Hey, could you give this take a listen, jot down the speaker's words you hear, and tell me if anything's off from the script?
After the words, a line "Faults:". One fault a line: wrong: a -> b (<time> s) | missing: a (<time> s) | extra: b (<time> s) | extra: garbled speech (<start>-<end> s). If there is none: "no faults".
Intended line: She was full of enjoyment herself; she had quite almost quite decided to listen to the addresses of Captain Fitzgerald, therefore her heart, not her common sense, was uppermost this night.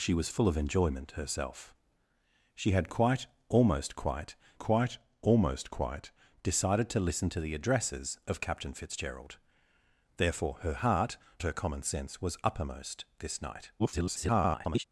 She was full of enjoyment herself; she had quite almost quite quite almost quite decided to listen to the addresses of Captain Fitzgerald, therefore her heart, her common sense, was uppermost this night. [garbled]
Faults:
extra: quite almost quite (4.6 s)
missing: not (11.2 s)
extra: garbled speech (13.8-14.8 s)